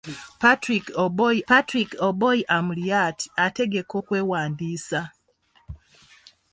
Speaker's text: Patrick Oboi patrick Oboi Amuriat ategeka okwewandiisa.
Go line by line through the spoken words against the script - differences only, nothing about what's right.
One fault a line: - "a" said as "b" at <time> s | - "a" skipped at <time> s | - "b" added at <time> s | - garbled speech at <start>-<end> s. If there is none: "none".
none